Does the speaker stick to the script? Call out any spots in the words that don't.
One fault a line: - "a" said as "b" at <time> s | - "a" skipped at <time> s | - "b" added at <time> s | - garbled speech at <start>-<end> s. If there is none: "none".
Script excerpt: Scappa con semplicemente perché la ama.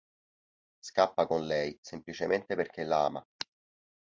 - "lei" added at 1.4 s